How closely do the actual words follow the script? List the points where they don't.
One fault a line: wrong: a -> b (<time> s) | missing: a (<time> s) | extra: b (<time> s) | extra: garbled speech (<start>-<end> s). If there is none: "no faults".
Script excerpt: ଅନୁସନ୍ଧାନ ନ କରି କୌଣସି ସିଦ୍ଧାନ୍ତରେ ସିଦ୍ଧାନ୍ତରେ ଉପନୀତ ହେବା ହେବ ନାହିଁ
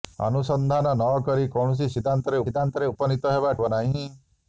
no faults